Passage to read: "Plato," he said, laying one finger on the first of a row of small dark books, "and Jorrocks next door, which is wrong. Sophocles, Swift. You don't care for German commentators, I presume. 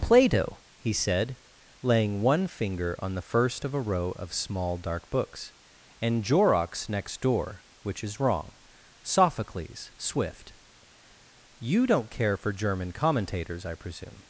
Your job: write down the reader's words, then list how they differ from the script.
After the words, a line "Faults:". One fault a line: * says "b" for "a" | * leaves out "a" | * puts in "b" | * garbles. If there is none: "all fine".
"Plato," he said, laying one finger on the first of a row of small dark books, "and Jorrocks next door, which is wrong. Sophocles, Swift. You don't care for German commentators, I presume.
Faults:
all fine